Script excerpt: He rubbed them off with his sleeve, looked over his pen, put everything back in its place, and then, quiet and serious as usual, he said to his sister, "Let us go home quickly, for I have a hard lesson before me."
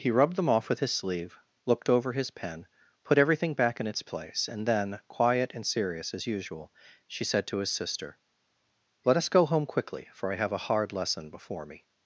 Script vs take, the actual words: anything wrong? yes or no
yes